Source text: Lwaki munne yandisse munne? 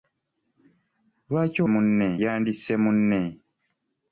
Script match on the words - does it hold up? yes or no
yes